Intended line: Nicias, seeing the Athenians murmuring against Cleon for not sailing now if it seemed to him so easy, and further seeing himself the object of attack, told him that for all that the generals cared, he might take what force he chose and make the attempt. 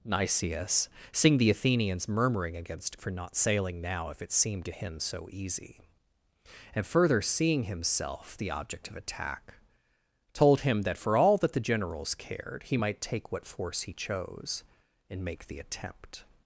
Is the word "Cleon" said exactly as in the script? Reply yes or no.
no